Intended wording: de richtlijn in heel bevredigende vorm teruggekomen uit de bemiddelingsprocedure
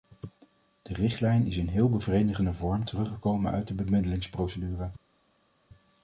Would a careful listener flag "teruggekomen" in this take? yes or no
no